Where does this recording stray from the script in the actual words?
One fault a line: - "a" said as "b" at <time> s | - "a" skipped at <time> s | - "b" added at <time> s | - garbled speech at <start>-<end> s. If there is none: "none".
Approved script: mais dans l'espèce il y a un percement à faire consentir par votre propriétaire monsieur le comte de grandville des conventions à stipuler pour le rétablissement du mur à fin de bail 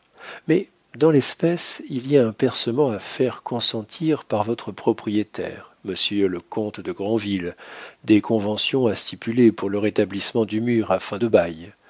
none